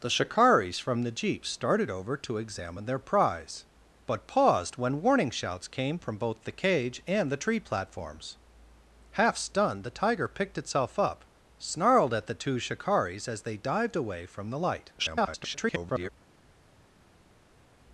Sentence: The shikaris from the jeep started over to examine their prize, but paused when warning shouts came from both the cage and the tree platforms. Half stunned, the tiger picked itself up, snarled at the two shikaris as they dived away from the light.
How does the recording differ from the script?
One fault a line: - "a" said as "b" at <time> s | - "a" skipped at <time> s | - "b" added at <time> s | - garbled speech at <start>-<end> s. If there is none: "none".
- garbled speech at 15.0-16.1 s